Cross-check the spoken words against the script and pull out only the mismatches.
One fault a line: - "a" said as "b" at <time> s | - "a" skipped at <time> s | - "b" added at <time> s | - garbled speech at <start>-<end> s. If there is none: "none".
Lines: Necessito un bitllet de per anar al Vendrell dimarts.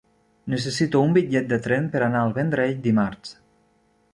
- "tren" added at 1.7 s